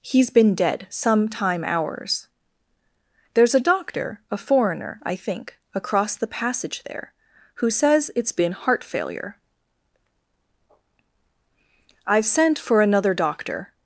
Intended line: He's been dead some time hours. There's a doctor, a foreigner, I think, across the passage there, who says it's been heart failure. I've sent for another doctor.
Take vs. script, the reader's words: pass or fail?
pass